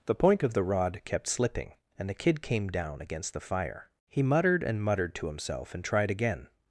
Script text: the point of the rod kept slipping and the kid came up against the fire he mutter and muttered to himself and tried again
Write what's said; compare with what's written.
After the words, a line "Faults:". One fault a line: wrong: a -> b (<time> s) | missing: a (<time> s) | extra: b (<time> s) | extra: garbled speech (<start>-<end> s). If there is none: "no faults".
the point of the rod kept slipping and the kid came down against the fire he muttered and muttered to himself and tried again
Faults:
wrong: up -> down (2.7 s)
wrong: mutter -> muttered (4.2 s)